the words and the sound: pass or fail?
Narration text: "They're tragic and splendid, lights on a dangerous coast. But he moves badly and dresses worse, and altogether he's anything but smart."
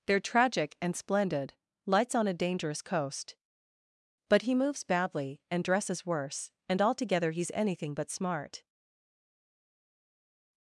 pass